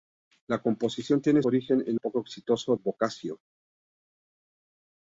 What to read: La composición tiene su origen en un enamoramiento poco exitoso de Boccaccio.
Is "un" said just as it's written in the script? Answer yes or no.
no